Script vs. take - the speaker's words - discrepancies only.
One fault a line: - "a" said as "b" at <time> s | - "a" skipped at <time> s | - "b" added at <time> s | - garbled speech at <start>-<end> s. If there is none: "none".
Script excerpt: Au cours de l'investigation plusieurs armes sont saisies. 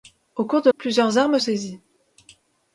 - "l'investigation" skipped at 0.7 s
- "sont" skipped at 1.4 s